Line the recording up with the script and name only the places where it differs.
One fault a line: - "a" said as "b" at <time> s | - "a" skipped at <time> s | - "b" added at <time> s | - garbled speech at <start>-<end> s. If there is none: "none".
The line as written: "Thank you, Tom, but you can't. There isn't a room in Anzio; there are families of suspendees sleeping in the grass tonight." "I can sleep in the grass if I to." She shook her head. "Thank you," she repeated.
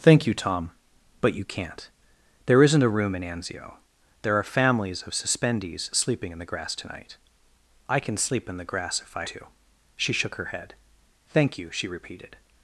none